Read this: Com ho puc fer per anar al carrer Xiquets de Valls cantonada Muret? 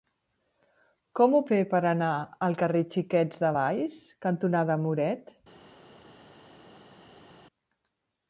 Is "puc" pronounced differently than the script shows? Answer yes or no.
yes